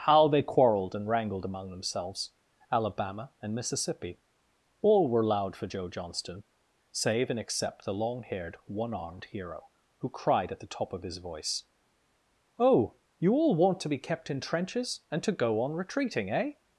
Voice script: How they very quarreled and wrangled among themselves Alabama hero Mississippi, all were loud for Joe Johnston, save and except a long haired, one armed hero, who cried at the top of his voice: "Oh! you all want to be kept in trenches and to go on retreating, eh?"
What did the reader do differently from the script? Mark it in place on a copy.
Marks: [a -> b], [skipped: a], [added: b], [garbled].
How they [skipped: very] quarreled and wrangled among themselves Alabama [hero -> and] Mississippi, all were loud for Joe Johnston, save and except [a -> the] long haired, one armed hero, who cried at the top of his voice: "Oh! you all want to be kept in trenches and to go on retreating, eh?"